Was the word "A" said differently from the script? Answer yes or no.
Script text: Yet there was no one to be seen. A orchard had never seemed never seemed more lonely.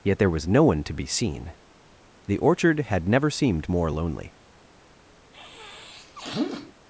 yes